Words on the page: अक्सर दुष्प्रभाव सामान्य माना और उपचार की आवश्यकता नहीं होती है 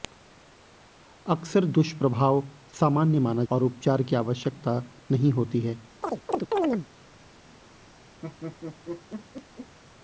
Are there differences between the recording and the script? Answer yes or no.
no